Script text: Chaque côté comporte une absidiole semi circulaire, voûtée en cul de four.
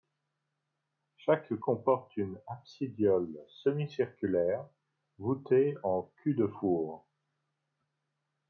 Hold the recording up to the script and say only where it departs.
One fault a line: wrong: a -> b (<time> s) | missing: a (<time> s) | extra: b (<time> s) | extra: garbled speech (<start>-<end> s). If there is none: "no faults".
missing: côté (1.5 s)